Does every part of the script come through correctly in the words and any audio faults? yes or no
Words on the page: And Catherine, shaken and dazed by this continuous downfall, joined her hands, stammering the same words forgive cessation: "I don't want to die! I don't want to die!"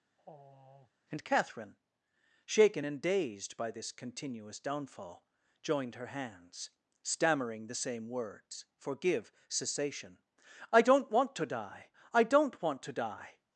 no